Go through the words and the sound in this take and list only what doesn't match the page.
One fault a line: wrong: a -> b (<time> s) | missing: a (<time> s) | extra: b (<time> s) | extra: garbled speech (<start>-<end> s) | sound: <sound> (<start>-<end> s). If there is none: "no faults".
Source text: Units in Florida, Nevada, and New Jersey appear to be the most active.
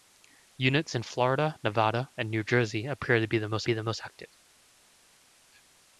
extra: be the most (3.6 s)